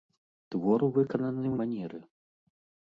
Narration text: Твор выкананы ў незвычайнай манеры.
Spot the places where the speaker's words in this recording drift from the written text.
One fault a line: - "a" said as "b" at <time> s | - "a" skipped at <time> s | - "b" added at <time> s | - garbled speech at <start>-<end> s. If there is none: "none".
- "незвычайнай" skipped at 1.5 s